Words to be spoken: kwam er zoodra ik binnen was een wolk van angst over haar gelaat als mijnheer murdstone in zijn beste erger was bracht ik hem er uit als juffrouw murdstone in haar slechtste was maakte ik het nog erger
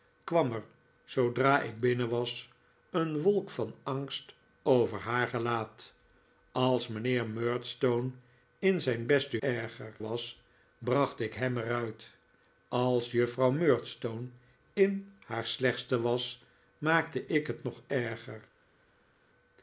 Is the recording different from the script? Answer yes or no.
no